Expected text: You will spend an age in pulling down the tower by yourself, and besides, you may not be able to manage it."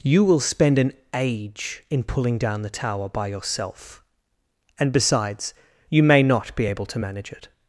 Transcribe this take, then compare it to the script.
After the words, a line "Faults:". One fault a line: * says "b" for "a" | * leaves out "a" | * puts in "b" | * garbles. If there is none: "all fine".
You will spend an age in pulling down the tower by yourself, and besides, you may not be able to manage it."
Faults:
all fine